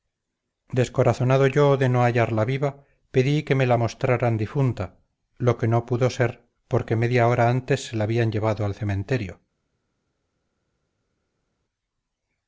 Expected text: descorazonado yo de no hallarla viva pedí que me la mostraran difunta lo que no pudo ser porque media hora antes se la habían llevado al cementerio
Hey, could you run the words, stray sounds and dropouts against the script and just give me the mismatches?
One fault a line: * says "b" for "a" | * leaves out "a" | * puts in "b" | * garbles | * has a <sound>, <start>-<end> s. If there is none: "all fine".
all fine